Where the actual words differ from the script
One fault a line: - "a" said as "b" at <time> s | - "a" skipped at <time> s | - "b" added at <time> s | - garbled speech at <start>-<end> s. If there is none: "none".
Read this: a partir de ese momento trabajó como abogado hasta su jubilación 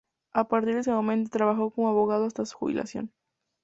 none